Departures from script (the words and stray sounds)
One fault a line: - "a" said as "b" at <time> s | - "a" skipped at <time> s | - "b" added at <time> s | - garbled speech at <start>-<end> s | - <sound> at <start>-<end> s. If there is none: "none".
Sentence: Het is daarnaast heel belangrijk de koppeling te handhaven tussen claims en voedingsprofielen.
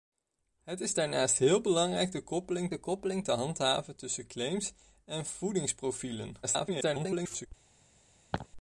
- "de koppeling" added at 2.7 s
- garbled speech at 6.4-7.5 s
- laugh at 8.3-8.5 s